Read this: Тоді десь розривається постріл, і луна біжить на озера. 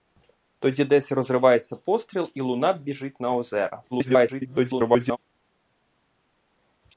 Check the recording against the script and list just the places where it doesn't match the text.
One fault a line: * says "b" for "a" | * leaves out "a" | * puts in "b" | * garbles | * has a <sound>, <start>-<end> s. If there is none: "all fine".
* garbles